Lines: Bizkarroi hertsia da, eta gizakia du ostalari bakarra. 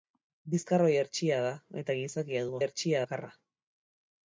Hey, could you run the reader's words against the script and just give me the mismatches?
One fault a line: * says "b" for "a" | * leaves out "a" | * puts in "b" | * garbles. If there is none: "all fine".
* says "hertsia" for "ostalari"